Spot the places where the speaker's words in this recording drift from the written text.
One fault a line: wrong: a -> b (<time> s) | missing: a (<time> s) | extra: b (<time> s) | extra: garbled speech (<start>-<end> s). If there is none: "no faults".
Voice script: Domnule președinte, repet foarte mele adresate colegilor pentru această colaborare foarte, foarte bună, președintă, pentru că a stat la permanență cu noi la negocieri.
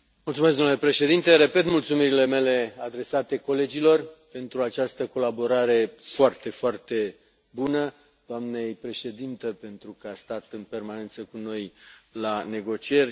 wrong: foarte -> mulțumirile (1.6 s)
extra: doamnei (8.3 s)
wrong: la -> în (10.5 s)